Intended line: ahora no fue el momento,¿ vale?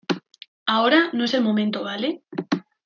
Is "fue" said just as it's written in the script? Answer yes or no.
no